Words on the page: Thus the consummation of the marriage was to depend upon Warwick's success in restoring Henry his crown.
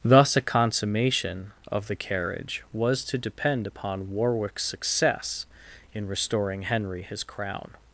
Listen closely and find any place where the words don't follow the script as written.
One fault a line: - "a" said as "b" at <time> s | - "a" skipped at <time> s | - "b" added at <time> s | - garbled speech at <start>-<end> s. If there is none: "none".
- "the" said as "a" at 0.3 s
- "marriage" said as "carriage" at 2.0 s